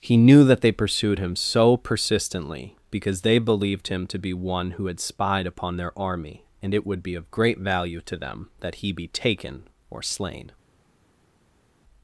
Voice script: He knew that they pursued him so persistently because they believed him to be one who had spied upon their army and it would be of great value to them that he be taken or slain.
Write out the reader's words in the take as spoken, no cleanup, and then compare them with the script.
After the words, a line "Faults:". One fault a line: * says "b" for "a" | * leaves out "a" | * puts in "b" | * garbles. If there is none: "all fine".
He knew that they pursued him so persistently because they believed him to be one who had spied upon their army and it would be of great value to them that he be taken or slain.
Faults:
all fine